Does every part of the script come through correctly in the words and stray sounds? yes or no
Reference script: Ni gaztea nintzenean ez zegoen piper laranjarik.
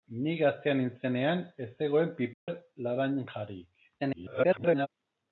no